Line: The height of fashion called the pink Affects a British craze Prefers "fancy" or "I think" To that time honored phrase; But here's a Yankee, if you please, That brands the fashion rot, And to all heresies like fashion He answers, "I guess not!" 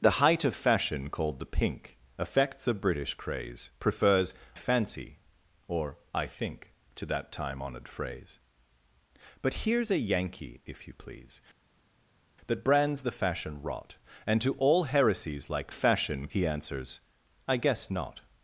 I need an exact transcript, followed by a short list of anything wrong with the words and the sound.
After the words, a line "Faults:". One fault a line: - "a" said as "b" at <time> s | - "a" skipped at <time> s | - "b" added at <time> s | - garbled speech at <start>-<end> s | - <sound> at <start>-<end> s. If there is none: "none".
The height of fashion called the pink Affects a British craze Prefers "fancy" or "I think" To that time honored phrase; But here's a Yankee, if you please, That brands the fashion rot, And to all heresies like fashion He answers, "I guess not!"
Faults:
none